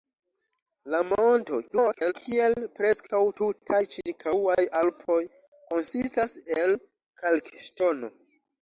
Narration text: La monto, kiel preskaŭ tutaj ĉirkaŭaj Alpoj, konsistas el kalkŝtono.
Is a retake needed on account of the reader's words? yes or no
yes